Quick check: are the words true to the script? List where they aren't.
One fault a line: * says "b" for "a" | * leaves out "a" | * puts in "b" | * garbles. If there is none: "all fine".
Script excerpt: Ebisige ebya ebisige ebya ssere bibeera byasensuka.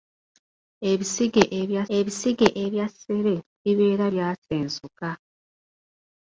all fine